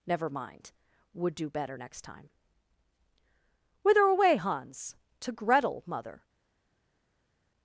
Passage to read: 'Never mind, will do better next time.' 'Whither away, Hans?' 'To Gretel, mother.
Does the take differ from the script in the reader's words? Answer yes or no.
yes